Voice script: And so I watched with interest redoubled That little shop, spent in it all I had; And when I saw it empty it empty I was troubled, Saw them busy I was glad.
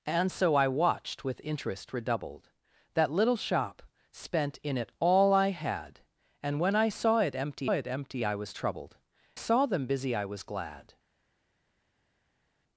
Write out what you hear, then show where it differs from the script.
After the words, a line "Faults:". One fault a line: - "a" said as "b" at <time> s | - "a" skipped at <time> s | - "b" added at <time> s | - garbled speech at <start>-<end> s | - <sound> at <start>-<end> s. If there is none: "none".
And so I watched with interest redoubled That little shop, spent in it all I had; And when I saw it empty it empty I was troubled, Saw them busy I was glad.
Faults:
none